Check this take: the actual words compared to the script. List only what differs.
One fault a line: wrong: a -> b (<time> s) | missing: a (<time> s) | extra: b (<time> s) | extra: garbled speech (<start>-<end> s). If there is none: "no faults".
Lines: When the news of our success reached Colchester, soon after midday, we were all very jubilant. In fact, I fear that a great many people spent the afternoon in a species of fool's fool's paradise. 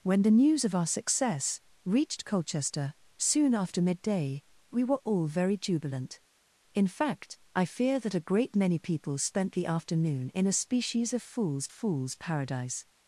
no faults